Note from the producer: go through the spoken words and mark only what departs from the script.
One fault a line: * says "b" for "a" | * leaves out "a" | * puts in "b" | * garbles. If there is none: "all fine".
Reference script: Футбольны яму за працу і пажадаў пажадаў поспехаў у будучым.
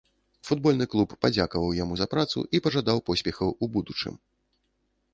* puts in "клуб падзякаваў"
* leaves out "пажадаў"